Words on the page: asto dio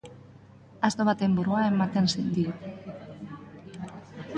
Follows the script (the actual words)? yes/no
no